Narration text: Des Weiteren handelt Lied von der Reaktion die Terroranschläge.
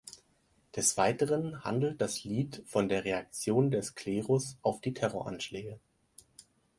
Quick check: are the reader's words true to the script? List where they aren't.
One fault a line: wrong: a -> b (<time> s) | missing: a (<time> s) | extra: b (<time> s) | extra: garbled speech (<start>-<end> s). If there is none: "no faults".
extra: das (2.0 s)
extra: des Klerus auf (3.7 s)